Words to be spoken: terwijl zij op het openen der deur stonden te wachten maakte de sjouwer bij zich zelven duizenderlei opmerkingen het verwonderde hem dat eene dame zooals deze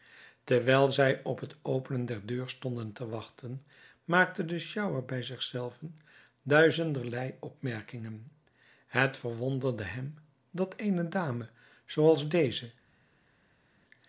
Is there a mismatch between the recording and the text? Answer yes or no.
no